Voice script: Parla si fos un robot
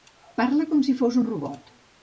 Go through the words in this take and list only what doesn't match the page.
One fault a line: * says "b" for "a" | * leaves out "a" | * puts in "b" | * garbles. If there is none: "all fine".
* puts in "com"